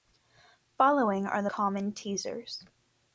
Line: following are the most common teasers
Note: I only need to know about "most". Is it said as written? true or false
false